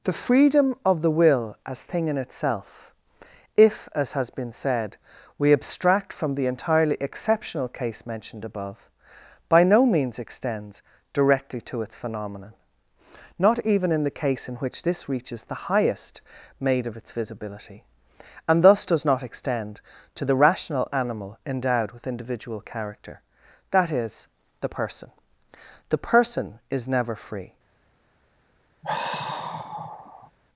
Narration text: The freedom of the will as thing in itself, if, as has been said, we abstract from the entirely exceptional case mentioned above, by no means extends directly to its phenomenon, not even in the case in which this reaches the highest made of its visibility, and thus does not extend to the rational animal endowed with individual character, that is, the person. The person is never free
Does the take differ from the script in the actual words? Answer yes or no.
no